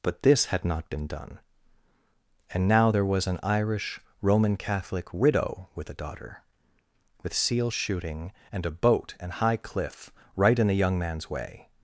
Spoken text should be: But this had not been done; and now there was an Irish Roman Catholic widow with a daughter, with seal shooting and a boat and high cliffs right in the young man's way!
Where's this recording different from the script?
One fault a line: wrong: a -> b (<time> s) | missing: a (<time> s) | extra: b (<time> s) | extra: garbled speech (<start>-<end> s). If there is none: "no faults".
wrong: cliffs -> cliff (9.6 s)